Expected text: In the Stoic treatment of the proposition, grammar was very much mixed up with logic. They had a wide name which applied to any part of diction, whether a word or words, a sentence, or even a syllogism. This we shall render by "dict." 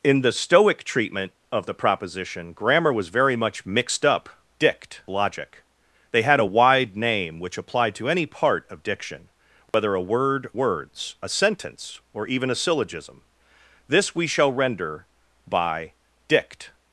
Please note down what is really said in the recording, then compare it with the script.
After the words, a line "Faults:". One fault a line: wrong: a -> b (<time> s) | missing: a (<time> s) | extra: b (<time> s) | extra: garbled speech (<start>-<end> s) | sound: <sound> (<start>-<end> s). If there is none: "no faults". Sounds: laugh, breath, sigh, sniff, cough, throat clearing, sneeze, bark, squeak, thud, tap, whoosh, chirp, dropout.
In the Stoic treatment of the proposition, grammar was very much mixed up dict logic. They had a wide name which applied to any part of diction, whether a word words, a sentence, or even a syllogism. This we shall render by "dict."
Faults:
wrong: with -> dict (4.6 s)
sound: dropout (9.7-9.7 s)
missing: or (10.5 s)